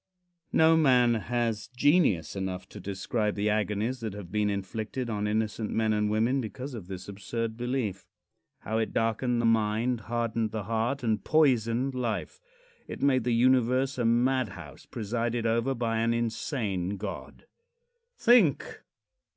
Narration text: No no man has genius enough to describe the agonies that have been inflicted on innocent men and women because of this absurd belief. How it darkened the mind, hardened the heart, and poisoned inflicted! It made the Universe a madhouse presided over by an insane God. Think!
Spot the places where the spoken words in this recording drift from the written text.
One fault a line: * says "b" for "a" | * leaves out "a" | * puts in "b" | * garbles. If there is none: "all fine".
* leaves out "no"
* says "life" for "inflicted"